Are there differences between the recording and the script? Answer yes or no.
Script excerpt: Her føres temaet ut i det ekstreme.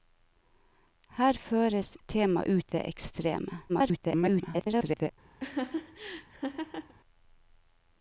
yes